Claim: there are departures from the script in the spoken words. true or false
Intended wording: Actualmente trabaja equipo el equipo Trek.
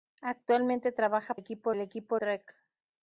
false